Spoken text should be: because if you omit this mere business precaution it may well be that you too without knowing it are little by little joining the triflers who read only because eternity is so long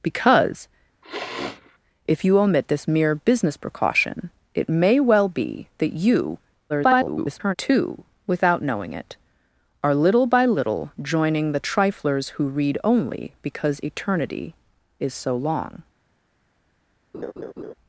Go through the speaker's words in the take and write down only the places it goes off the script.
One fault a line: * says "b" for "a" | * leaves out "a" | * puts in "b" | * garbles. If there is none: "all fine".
* garbles